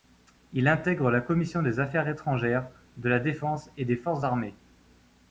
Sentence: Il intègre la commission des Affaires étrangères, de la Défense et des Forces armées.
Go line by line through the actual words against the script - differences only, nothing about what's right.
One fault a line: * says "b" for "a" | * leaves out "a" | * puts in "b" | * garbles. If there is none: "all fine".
all fine